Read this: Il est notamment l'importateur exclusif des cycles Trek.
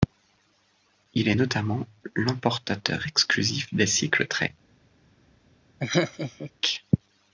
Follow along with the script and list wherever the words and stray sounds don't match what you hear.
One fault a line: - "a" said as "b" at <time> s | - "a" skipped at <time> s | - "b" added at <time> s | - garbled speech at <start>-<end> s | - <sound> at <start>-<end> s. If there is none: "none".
- laugh at 5.8-6.5 s